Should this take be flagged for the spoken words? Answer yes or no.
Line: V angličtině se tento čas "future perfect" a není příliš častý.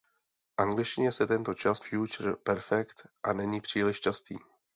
no